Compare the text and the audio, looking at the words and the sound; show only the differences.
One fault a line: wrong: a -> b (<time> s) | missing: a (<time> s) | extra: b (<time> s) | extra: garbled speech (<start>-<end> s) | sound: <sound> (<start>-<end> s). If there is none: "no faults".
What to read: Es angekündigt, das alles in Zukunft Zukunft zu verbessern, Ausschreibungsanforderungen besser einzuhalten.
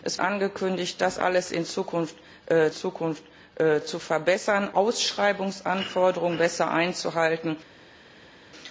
no faults